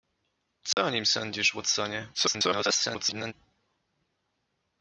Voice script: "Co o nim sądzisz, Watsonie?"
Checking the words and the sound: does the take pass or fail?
fail